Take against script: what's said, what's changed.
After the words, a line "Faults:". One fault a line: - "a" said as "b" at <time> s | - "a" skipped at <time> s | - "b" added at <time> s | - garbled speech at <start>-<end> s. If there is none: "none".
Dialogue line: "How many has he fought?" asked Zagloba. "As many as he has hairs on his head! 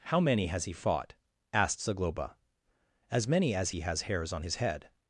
"How many has he fought?" asked Zagloba. "As many as he has hairs on his head!
Faults:
none